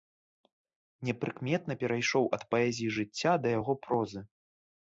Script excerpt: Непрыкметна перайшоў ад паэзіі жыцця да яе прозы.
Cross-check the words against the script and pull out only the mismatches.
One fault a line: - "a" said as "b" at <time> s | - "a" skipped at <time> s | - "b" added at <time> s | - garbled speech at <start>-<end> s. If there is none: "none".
- "яе" said as "яго" at 3.6 s